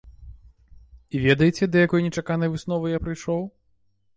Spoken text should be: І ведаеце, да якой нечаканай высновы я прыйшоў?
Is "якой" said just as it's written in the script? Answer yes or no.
yes